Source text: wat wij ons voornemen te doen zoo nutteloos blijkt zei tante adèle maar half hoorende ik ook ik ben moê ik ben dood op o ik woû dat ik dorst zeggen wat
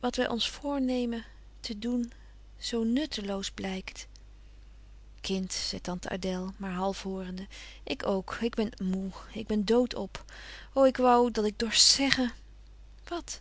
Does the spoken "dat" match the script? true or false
true